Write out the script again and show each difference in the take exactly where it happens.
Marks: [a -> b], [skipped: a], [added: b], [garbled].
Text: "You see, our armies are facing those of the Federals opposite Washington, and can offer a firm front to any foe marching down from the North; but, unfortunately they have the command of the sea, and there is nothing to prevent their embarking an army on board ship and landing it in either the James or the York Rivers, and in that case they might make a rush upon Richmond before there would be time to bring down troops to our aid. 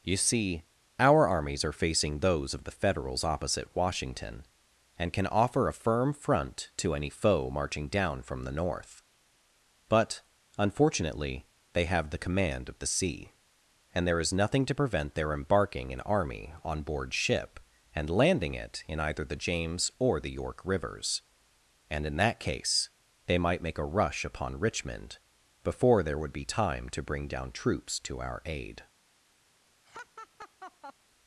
"You see, our armies are facing those of the Federals opposite Washington, and can offer a firm front to any foe marching down from the North; but, unfortunately they have the command of the sea, and there is nothing to prevent their embarking an army on board ship and landing it in either the James or the York Rivers, and in that case they might make a rush upon Richmond before there would be time to bring down troops to our aid.